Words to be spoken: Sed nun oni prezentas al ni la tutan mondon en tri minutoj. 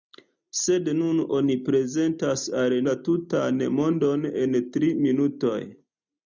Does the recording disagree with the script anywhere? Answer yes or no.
yes